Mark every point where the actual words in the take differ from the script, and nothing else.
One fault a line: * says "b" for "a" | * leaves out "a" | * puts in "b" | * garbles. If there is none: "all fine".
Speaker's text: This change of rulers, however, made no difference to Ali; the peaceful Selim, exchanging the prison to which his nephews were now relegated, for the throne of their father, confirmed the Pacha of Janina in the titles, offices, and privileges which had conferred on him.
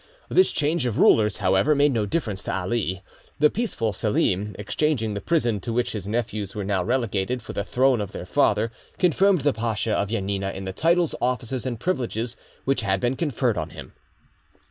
* puts in "been"